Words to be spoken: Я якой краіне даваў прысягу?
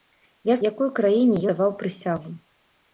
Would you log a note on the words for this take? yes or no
no